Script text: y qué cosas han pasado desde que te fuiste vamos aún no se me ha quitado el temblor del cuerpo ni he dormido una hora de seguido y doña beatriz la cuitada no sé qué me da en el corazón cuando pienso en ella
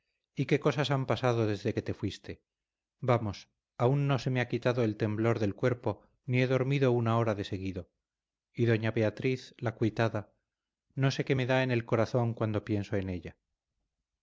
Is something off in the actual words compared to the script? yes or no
no